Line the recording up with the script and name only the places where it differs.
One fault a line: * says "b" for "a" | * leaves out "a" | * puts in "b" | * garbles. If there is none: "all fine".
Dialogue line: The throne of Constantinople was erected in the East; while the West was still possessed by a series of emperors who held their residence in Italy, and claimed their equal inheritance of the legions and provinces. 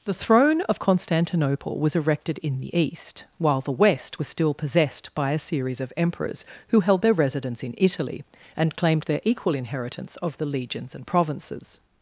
all fine